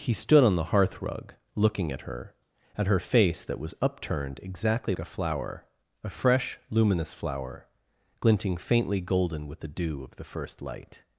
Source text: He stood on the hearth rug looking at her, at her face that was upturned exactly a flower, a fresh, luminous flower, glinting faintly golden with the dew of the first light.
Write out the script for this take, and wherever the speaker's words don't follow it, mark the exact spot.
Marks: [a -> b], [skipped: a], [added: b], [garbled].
He stood on the hearth rug looking at her, at her face that was upturned exactly a flower, a fresh, luminous flower, glinting faintly golden with the dew of the first light.